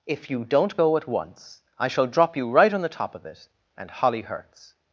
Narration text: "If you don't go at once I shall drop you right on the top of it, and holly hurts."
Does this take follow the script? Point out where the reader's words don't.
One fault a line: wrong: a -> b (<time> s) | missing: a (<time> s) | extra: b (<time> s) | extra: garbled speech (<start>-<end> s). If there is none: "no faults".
no faults